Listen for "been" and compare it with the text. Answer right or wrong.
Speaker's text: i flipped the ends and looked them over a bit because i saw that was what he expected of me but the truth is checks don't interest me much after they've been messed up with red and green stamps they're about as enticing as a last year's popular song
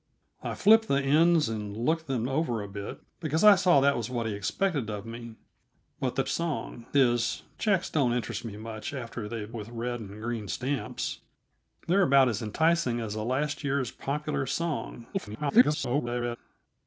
wrong